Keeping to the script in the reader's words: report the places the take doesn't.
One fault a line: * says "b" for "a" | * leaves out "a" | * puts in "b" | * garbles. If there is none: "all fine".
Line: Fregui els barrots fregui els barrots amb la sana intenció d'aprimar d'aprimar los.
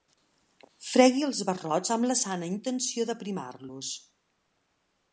* leaves out "fregui els barrots"
* leaves out "d'aprimar"